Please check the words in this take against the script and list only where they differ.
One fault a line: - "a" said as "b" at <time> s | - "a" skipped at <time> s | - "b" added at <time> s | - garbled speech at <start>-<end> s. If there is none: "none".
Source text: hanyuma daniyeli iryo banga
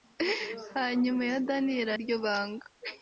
none